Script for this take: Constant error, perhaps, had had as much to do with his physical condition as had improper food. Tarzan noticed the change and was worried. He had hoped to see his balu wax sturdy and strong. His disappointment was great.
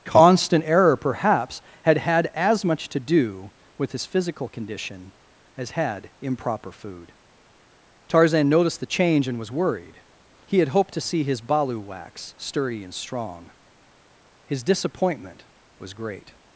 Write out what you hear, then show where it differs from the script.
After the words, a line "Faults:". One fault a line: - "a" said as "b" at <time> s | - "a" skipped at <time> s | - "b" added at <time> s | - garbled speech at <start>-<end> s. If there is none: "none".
Constant error, perhaps, had had as much to do with his physical condition as had improper food. Tarzan noticed the change and was worried. He had hoped to see his balu wax sturdy and strong. His disappointment was great.
Faults:
none